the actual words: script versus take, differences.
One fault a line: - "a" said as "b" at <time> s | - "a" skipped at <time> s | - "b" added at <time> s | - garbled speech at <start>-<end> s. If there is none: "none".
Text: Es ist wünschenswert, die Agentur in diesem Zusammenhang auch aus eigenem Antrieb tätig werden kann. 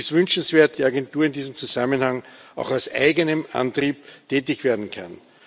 none